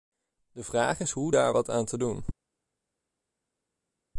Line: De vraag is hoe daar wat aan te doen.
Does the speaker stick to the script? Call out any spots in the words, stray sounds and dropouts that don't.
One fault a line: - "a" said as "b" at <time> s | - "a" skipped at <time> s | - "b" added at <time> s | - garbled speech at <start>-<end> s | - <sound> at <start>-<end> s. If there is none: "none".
none